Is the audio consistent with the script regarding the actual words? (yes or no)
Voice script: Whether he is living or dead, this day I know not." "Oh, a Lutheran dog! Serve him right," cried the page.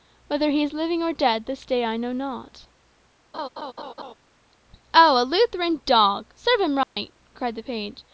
yes